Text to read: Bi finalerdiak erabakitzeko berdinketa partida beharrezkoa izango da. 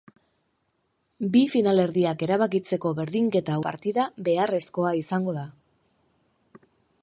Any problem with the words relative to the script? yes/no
no